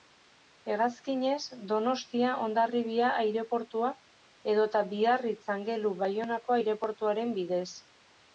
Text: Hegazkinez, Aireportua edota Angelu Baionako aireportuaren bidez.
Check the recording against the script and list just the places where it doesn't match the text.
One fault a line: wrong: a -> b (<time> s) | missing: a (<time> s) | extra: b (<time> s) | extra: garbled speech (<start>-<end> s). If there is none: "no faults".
extra: Donostia Hondarribia (1.7 s)
extra: Biarritz (5.0 s)